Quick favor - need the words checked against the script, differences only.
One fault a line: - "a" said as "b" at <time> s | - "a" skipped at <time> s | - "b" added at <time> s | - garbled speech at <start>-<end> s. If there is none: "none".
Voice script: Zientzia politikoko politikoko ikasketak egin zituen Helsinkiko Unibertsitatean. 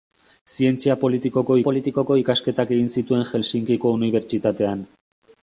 none